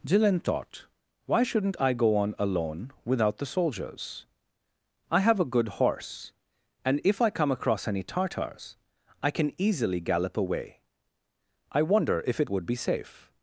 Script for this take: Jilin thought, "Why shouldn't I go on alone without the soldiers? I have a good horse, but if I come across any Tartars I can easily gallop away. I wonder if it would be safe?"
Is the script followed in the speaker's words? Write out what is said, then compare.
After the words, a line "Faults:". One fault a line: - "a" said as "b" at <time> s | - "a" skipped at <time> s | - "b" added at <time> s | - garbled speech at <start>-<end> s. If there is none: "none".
Jilin thought, "Why shouldn't I go on alone without the soldiers? I have a good horse, and if I come across any Tartars I can easily gallop away. I wonder if it would be safe?"
Faults:
- "but" said as "and" at 6.8 s